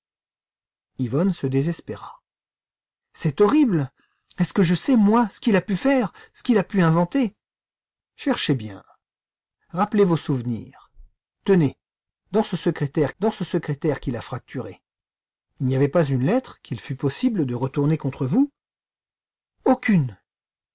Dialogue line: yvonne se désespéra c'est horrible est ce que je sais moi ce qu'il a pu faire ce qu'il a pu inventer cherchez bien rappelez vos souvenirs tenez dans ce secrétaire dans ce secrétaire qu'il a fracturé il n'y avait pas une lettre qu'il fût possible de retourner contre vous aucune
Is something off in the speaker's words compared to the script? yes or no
no